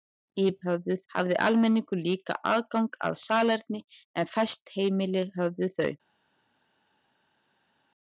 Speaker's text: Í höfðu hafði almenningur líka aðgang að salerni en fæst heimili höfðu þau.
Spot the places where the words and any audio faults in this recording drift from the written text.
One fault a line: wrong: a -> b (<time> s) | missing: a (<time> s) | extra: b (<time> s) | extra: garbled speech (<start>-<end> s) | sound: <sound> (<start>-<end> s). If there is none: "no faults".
no faults